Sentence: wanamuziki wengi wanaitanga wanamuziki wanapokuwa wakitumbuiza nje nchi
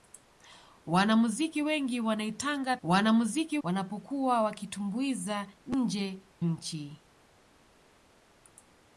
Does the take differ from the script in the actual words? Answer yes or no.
no